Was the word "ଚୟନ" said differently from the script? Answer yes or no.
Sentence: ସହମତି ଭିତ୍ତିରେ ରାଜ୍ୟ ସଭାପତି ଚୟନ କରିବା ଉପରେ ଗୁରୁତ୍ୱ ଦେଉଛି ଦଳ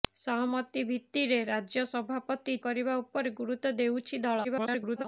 yes